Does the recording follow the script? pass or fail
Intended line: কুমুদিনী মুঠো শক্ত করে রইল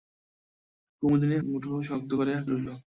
pass